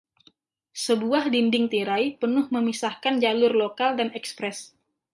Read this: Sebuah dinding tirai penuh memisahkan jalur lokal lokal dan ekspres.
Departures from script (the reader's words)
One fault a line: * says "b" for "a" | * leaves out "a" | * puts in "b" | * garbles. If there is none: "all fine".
* leaves out "lokal"